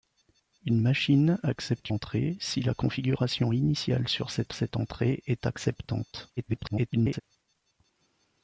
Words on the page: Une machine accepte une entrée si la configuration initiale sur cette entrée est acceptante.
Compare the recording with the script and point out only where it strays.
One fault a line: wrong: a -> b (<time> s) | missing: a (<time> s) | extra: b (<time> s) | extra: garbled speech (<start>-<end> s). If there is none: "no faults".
missing: une (1.9 s)
extra: cette (4.5 s)
extra: garbled speech (6.4-7.2 s)